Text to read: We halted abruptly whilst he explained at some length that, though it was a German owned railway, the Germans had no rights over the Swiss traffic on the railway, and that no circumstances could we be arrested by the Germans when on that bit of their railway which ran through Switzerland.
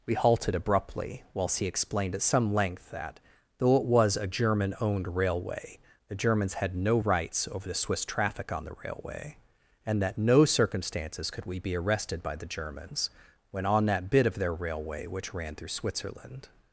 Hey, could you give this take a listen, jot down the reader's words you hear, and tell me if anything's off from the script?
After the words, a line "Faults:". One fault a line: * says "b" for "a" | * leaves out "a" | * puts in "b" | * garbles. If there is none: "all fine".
We halted abruptly whilst he explained at some length that, though it was a German owned railway, the Germans had no rights over the Swiss traffic on the railway, and that no circumstances could we be arrested by the Germans when on that bit of their railway which ran through Switzerland.
Faults:
all fine